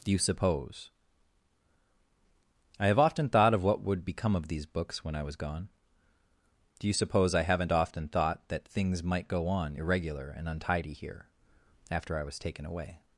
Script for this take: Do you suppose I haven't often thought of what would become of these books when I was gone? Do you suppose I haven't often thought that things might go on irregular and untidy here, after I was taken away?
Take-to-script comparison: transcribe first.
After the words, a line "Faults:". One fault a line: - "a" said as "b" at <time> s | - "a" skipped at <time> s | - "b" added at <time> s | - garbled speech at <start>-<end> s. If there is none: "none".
Do you suppose I have often thought of what would become of these books when I was gone? Do you suppose I haven't often thought that things might go on irregular and untidy here, after I was taken away?
Faults:
- "haven't" said as "have" at 2.9 s